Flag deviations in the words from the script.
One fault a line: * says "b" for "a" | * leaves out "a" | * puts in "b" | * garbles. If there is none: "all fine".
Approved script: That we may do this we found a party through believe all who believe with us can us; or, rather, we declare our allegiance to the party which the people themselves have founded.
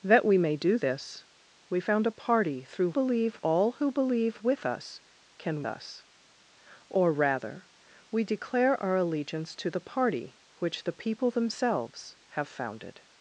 all fine